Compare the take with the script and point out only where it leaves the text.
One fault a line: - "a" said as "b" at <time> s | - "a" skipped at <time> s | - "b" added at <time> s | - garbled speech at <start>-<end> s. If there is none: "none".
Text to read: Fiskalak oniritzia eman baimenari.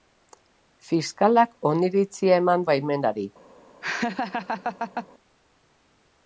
none